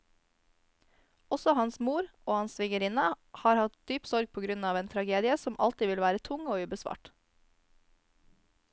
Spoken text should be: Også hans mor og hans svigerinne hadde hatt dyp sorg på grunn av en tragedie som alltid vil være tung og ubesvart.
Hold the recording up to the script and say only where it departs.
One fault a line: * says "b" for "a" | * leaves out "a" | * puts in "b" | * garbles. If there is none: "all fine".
* says "har" for "hadde"